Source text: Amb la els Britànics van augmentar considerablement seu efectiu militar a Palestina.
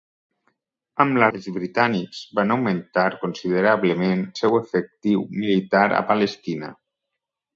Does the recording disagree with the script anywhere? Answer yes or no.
no